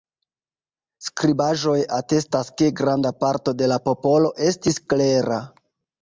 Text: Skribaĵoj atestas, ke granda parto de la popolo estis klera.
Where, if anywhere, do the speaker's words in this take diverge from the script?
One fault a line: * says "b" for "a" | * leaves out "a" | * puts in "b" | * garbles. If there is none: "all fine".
all fine